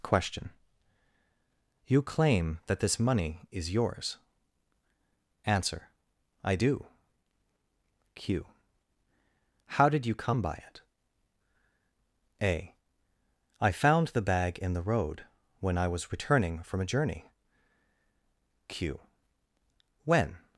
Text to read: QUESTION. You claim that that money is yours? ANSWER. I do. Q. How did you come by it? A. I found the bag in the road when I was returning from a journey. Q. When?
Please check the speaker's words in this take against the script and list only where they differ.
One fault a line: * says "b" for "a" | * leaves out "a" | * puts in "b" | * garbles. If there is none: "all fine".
* says "this" for "that"